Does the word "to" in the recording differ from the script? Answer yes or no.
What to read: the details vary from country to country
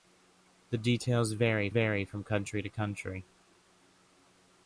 no